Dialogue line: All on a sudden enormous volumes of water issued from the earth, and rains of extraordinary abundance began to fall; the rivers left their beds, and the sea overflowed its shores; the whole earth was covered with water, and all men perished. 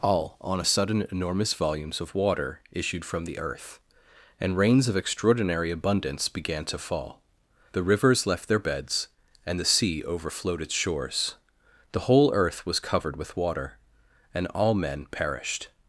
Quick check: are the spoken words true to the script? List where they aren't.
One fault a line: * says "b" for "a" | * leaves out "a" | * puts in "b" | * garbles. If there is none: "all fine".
all fine